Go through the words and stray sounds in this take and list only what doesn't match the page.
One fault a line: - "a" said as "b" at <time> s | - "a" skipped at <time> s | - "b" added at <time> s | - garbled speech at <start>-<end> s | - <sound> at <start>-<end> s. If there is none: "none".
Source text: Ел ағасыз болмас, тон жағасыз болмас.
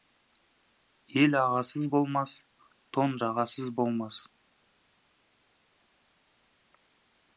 none